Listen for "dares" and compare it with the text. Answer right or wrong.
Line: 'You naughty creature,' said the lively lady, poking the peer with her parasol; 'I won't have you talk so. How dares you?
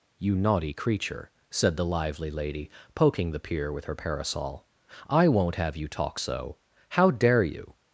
wrong